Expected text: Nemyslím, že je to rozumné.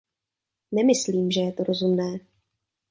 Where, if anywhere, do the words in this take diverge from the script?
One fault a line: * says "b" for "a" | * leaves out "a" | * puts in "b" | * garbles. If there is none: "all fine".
all fine